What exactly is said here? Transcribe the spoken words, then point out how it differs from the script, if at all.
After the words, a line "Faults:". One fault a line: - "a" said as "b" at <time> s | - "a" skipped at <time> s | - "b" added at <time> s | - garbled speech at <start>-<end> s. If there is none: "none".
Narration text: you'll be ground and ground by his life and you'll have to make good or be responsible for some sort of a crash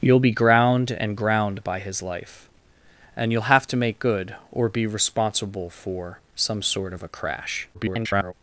you'll be ground and ground by his life and you'll have to make good or be responsible for some sort of a crash [garbled]
Faults:
- garbled speech at 7.7-8.3 s